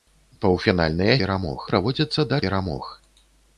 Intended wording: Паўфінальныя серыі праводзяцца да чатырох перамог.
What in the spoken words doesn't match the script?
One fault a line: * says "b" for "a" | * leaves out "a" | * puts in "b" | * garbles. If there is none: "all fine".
* says "перамог" for "серыі"
* leaves out "чатырох"